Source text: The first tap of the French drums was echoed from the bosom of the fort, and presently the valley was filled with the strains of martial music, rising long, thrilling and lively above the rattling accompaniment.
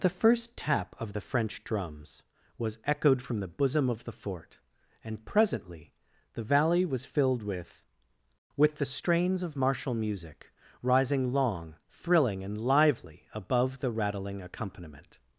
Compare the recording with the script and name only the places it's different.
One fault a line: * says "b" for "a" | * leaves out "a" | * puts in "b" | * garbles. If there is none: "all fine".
* puts in "with"